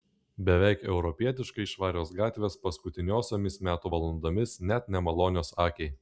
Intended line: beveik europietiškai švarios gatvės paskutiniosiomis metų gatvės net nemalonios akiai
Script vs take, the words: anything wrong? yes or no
yes